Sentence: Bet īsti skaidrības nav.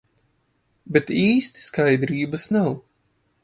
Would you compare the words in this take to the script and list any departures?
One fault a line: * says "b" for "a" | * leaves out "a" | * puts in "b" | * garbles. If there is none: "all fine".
all fine